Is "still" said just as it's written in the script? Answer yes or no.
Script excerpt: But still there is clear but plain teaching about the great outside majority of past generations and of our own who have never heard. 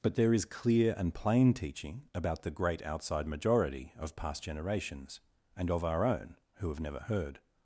no